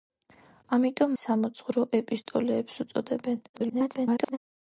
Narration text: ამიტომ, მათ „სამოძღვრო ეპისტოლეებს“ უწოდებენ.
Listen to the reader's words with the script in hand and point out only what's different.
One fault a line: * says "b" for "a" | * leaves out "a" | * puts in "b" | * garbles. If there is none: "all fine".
* leaves out "მათ"
* garbles